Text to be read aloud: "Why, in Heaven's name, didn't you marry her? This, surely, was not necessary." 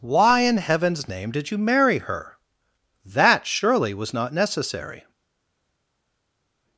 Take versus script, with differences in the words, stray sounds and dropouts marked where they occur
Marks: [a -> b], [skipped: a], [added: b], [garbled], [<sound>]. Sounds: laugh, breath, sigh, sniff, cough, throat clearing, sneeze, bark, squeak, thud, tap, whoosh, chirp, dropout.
"Why, in Heaven's name, [didn't -> did] you marry her? [This, -> That] surely, was not necessary."